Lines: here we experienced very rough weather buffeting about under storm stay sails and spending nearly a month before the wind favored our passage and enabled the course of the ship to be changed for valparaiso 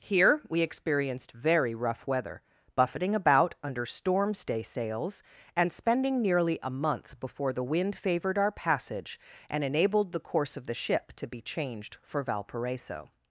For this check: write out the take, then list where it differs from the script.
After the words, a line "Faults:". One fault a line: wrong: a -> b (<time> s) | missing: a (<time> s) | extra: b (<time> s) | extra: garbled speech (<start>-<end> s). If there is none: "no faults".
here we experienced very rough weather buffeting about under storm stay sails and spending nearly a month before the wind favored our passage and enabled the course of the ship to be changed for valparaiso
Faults:
no faults